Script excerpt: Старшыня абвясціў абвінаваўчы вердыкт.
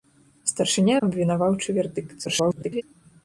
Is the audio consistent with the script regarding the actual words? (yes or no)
no